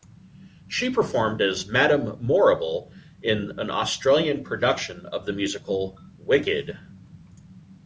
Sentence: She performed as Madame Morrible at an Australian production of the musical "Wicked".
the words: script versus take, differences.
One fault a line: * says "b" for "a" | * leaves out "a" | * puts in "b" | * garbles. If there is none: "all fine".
* says "in" for "at"